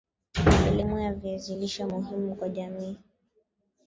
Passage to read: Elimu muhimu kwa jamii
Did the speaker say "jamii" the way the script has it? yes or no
yes